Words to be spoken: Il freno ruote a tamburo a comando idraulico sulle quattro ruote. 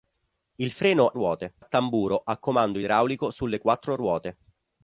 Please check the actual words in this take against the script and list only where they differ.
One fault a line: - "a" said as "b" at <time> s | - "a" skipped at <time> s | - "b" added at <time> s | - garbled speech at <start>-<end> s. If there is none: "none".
none